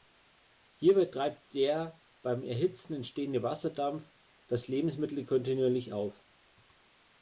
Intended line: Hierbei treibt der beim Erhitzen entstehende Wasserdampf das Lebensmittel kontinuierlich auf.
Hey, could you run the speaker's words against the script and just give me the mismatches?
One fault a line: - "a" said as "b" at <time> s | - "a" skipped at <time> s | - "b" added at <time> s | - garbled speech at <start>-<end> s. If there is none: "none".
none